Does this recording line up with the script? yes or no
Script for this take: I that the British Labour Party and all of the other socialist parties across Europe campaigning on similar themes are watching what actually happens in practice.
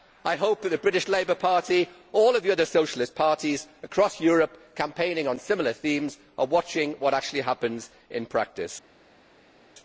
no